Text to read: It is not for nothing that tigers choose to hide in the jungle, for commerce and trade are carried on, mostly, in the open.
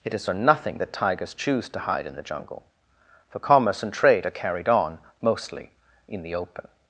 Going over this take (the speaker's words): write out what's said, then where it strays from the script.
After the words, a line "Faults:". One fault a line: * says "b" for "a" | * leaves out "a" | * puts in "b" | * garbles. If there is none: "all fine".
It is for nothing that tigers choose to hide in the jungle, for commerce and trade are carried on, mostly, in the open.
Faults:
* leaves out "not"